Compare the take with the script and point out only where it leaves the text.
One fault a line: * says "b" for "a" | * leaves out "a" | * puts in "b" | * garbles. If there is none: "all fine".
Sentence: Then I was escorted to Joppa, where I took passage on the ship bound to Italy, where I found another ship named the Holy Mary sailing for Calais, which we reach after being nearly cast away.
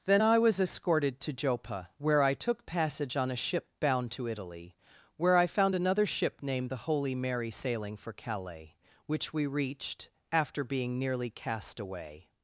* says "a" for "the"
* says "reached" for "reach"